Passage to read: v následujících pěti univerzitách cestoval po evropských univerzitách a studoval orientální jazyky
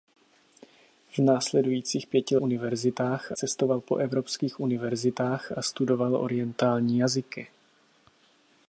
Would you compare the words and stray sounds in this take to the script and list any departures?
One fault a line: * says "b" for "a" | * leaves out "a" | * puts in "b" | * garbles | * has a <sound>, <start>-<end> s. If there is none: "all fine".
all fine